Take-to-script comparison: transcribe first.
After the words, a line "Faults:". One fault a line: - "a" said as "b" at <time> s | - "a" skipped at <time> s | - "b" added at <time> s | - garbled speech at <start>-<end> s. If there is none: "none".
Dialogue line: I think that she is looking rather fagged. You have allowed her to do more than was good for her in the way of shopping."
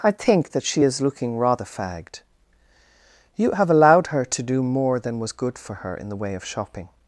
I think that she is looking rather fagged. You have allowed her to do more than was good for her in the way of shopping."
Faults:
none